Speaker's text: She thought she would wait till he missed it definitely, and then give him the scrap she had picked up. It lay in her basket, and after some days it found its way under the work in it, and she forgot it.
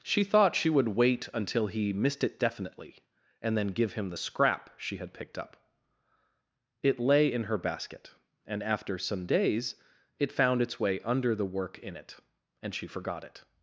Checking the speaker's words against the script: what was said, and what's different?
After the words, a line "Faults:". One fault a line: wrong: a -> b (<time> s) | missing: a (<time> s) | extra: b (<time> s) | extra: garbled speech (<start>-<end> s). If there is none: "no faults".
She thought she would wait until he missed it definitely, and then give him the scrap she had picked up. It lay in her basket, and after some days it found its way under the work in it, and she forgot it.
Faults:
wrong: till -> until (1.3 s)